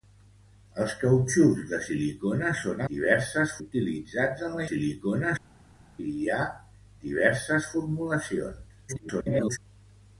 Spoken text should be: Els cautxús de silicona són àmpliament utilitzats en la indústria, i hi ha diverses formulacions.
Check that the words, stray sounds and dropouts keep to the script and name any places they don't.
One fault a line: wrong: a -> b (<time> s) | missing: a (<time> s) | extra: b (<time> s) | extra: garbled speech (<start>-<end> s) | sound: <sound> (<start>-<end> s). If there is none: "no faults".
wrong: àmpliament -> diverses (2.9 s)
wrong: indústria -> silicona (4.7 s)
extra: garbled speech (8.9-9.6 s)